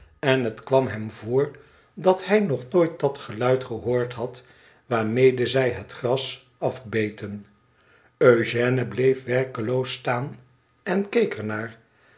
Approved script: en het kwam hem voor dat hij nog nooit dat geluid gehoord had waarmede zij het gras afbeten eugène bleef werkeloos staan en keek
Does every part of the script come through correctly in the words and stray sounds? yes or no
yes